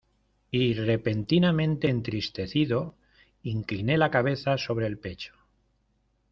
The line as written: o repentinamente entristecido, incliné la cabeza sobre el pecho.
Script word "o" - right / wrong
wrong